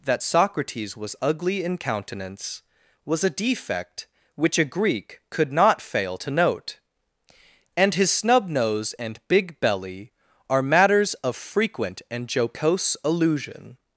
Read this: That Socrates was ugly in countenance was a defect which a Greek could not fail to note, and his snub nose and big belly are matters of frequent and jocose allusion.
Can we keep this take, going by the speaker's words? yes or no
yes